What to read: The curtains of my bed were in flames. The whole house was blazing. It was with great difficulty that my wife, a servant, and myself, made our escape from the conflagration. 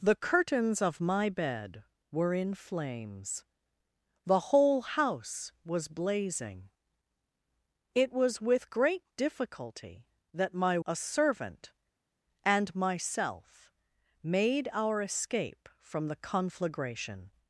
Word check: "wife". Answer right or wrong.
wrong